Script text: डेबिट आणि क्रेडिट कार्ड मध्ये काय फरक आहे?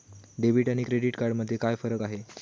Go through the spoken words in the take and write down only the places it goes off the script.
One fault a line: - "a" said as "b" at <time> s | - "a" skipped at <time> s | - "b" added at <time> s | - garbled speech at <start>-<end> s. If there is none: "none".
none